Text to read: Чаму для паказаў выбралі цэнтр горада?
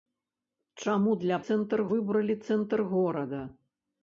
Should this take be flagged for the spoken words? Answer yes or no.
yes